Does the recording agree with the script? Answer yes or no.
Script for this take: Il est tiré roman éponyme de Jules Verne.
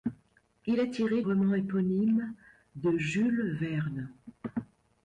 yes